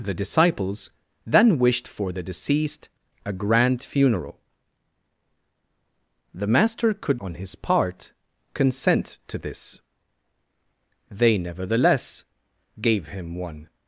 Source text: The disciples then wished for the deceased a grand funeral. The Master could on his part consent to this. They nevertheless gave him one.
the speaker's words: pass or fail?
pass